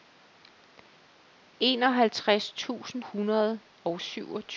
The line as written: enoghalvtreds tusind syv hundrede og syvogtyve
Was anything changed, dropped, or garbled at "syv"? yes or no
yes